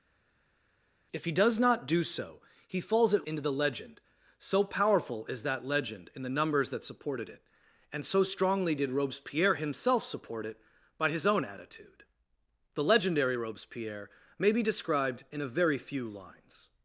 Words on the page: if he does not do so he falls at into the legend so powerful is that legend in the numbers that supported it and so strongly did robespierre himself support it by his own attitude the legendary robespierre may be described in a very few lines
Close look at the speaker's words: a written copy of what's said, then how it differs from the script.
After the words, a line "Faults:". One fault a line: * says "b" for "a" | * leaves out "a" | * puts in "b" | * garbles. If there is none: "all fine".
if he does not do so he falls at into the legend so powerful is that legend in the numbers that supported it and so strongly did robespierre himself support it by his own attitude the legendary robespierre may be described in a very few lines
Faults:
all fine